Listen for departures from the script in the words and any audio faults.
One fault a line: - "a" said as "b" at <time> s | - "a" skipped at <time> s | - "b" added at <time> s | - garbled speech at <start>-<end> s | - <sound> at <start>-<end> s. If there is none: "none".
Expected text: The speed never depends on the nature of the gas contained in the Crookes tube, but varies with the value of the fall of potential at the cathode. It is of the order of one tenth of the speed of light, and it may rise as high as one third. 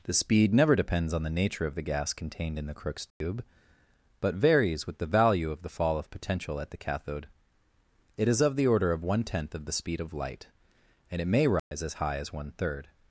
- dropout at 3.1-3.2 s
- dropout at 11.6-11.7 s